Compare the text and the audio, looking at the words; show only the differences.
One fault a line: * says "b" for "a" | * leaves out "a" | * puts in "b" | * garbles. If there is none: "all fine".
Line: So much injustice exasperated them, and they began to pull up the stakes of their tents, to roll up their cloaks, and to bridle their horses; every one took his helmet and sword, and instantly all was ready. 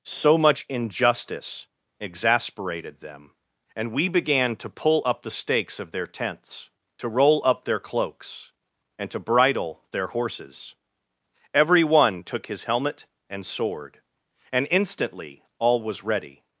* says "we" for "they"